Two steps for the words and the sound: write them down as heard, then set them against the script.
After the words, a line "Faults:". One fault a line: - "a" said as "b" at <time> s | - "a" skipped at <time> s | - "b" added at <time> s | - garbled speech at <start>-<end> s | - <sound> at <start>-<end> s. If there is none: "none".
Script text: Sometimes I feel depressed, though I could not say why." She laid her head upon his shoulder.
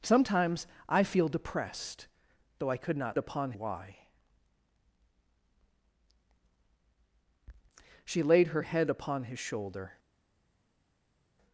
Sometimes I feel depressed, though I could not upon why." She laid her head upon his shoulder.
Faults:
- "say" said as "upon" at 3.2 s